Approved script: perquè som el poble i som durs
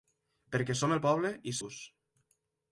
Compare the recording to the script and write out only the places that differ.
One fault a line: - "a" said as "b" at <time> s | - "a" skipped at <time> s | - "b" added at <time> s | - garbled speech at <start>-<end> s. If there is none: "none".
- "som" skipped at 1.6 s